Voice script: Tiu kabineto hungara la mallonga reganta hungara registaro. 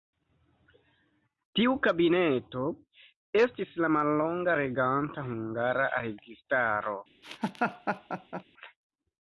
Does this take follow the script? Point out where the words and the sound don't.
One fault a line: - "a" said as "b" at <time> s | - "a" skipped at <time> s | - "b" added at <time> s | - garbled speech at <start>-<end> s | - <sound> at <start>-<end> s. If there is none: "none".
- "hungara" said as "estis" at 3.4 s
- laugh at 7.2-8.4 s